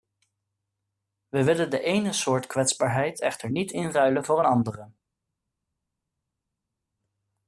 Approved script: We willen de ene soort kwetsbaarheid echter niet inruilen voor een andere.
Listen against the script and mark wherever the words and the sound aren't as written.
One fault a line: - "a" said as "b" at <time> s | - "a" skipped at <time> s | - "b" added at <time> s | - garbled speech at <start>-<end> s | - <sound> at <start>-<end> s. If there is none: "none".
none